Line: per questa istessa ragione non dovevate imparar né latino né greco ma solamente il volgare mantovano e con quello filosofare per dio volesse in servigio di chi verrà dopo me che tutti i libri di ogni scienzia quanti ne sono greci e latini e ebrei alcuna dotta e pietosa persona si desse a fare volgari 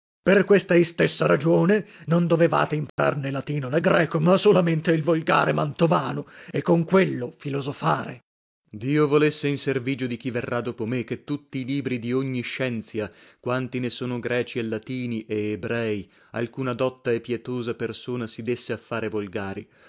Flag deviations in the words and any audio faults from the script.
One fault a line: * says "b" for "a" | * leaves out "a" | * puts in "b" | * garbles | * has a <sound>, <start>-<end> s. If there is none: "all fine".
* has a dropout, 2.9-3.0 s